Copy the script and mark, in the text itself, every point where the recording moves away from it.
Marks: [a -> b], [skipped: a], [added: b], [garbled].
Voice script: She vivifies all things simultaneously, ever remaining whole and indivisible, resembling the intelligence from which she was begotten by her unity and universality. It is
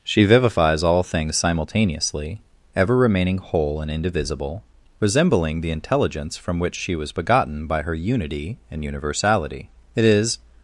She vivifies all things simultaneously, ever remaining whole and indivisible, resembling the intelligence from which she was begotten by her unity and universality. It is